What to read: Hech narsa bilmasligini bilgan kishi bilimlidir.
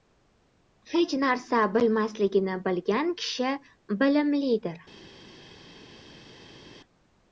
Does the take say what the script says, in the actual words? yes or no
yes